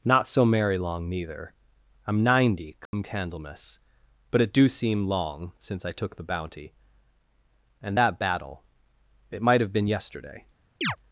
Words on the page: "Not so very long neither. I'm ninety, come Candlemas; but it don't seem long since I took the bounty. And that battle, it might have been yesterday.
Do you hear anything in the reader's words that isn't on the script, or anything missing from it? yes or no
yes